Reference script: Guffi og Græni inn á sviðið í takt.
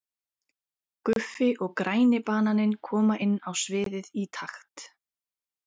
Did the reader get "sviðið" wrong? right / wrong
right